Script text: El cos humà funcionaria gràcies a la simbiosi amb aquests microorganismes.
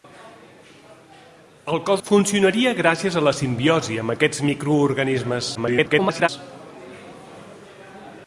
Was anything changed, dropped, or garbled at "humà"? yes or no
yes